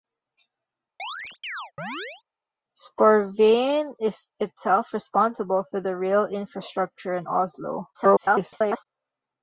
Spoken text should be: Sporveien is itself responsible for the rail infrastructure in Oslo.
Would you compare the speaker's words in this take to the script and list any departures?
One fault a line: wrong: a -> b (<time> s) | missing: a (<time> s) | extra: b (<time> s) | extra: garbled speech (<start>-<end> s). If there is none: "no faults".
extra: garbled speech (7.9-8.9 s)